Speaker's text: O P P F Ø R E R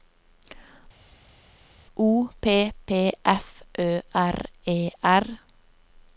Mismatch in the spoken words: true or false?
false